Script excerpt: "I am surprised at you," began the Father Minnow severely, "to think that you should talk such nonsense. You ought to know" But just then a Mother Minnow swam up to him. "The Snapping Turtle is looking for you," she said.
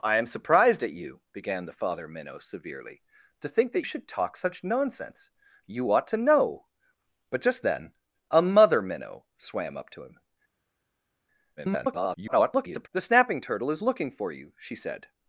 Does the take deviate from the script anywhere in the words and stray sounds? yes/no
yes